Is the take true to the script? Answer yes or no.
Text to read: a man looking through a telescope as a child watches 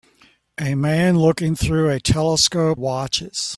no